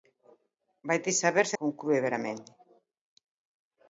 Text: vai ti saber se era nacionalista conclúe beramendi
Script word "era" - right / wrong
wrong